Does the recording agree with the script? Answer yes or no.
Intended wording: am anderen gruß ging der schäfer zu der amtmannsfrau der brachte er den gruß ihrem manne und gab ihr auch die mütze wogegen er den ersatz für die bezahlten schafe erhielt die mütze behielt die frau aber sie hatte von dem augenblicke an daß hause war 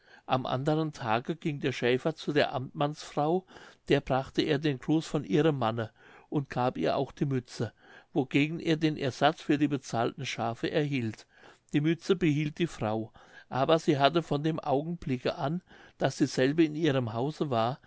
no